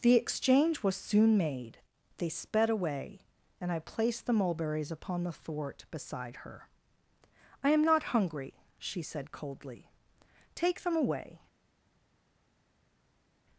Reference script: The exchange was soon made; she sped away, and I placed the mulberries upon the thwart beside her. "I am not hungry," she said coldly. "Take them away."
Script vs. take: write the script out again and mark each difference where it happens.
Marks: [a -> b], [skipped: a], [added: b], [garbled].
The exchange was soon made; [she -> they] sped away, and I placed the mulberries upon the thwart beside her. "I am not hungry," she said coldly. "Take them away."